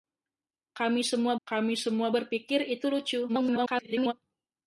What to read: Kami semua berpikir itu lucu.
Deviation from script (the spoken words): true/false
true